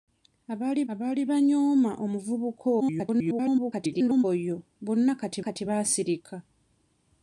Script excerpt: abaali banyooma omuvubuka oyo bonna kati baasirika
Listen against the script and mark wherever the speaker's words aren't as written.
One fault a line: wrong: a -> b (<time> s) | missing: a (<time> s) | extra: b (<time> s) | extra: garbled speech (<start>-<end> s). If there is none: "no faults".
extra: abaali (0.9 s)
extra: garbled speech (2.8-4.2 s)
extra: kati (5.4 s)